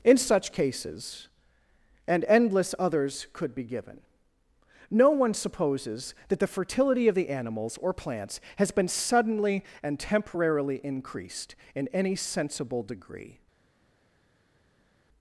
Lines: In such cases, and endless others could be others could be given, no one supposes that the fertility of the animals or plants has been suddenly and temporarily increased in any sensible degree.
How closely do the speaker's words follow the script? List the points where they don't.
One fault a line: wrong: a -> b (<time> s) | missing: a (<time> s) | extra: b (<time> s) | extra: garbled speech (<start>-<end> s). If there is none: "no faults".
missing: others could be (3.6 s)